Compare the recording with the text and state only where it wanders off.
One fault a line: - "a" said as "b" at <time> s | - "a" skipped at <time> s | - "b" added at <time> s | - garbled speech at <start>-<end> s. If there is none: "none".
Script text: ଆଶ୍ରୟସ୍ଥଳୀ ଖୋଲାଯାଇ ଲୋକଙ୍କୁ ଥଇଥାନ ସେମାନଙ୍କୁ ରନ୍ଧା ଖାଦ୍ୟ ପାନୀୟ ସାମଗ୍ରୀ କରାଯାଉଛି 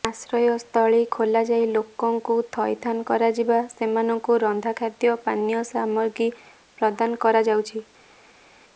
- "କରାଯିବା" added at 3.0 s
- "ପ୍ରଦାନ" added at 6.8 s